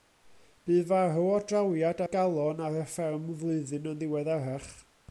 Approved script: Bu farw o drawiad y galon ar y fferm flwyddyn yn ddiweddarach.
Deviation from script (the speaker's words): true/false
false